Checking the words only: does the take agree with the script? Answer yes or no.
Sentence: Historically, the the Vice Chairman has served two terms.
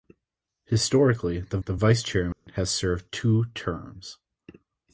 yes